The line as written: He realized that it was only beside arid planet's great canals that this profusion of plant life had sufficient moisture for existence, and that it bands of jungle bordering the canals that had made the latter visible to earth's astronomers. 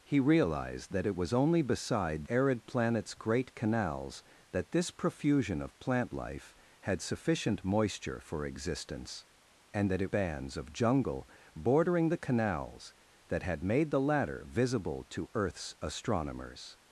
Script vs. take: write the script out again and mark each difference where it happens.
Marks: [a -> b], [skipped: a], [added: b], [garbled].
He realized that it was only beside arid planet's great canals that this profusion of plant life had sufficient moisture for existence, and that it bands of jungle bordering the canals that had made the latter visible to earth's astronomers.